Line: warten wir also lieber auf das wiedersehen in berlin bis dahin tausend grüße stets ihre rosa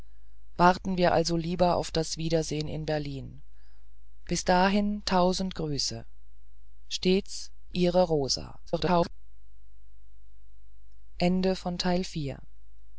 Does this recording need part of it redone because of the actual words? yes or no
yes